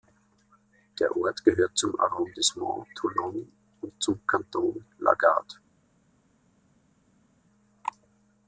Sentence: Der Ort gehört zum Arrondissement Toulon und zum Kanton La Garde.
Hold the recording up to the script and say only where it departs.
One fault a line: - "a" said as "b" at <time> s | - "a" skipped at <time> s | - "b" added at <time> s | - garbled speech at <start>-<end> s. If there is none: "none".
none